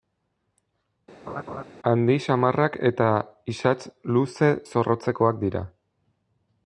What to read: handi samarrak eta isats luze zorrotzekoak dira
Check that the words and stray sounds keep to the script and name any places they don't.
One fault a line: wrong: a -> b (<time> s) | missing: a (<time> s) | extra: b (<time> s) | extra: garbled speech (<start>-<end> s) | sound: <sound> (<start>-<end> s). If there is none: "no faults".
sound: laugh (1.3-1.6 s)